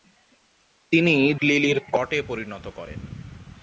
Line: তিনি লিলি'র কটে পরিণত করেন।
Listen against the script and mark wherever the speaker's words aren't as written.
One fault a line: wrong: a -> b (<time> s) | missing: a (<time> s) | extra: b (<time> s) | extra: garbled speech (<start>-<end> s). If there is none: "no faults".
no faults